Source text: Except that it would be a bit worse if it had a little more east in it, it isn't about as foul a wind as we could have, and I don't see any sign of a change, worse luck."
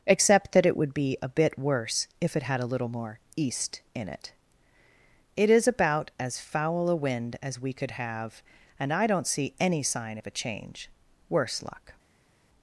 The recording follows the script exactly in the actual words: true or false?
false